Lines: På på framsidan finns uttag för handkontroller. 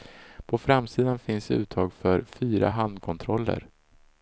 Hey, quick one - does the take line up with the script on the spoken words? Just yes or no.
no